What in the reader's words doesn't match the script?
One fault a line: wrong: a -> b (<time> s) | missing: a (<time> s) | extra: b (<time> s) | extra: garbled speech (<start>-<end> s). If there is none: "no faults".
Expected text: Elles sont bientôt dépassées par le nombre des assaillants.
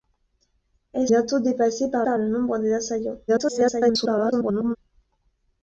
missing: sont (1.1 s)
extra: par (2.0 s)
extra: garbled speech (3.3-4.8 s)